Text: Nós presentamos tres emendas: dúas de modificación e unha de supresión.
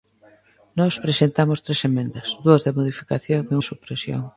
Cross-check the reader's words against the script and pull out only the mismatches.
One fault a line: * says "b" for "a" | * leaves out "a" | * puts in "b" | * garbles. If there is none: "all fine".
* leaves out "unha"